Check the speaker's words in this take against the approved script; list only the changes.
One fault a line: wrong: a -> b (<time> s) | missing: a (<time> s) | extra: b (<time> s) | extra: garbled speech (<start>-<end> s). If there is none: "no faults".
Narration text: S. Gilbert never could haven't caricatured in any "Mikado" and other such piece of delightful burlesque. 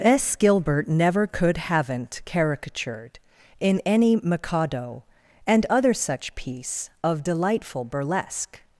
no faults